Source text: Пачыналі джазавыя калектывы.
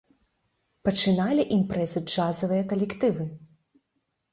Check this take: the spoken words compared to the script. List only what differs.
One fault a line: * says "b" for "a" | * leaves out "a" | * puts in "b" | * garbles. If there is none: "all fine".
* puts in "імпрэзы"